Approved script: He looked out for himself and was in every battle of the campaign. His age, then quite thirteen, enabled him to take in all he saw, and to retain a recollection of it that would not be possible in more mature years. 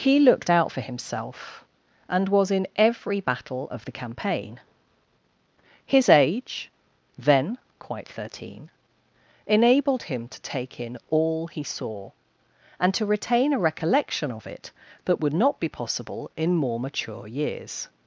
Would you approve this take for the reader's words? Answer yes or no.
yes